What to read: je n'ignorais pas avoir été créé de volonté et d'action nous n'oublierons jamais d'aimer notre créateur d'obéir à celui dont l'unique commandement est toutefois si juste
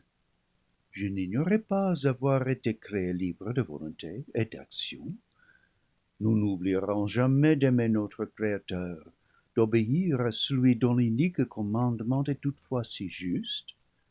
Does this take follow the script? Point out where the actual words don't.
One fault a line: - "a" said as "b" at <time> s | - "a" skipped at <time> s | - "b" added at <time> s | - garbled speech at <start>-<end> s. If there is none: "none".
- "libre" added at 3.1 s